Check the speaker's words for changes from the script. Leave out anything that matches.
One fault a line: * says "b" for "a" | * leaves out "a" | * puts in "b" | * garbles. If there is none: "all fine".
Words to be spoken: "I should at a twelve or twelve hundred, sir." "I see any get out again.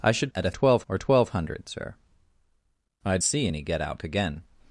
all fine